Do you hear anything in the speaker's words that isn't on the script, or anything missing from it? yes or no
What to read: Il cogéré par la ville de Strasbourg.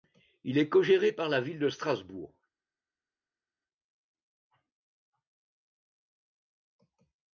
yes